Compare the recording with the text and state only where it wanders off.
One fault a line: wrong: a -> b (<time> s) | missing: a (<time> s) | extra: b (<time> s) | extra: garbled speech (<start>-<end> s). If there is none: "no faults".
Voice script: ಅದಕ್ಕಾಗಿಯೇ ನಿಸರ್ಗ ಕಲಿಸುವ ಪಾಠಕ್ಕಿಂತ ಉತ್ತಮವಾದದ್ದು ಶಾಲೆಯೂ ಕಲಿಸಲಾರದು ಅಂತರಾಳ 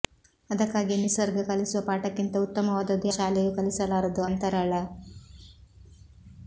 no faults